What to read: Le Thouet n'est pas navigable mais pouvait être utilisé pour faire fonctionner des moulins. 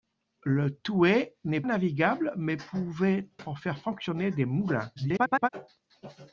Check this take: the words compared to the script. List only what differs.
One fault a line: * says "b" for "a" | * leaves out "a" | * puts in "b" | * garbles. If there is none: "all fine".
* leaves out "pas"
* leaves out "être utilisé"
* garbles